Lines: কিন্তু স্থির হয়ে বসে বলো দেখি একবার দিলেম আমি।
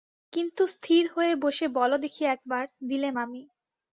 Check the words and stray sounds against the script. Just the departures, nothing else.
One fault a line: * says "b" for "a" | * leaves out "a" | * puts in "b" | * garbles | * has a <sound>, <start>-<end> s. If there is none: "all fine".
all fine